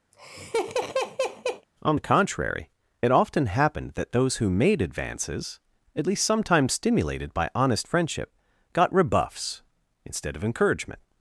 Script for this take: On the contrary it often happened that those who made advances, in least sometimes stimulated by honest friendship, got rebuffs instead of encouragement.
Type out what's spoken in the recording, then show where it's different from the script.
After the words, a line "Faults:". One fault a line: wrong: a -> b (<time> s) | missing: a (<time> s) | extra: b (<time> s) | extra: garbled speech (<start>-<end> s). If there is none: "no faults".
On the contrary it often happened that those who made advances, at least sometimes stimulated by honest friendship, got rebuffs instead of encouragement.
Faults:
wrong: in -> at (6.0 s)